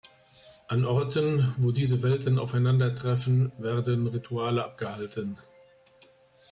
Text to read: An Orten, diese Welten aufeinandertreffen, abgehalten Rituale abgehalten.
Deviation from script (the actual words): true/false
true